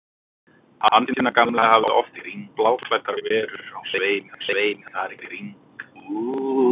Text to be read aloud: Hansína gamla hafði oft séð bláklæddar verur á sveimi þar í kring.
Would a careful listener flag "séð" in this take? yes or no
yes